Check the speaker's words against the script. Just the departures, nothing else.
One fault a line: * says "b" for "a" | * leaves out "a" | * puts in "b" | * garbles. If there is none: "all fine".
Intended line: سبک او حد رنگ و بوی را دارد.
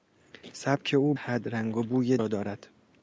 all fine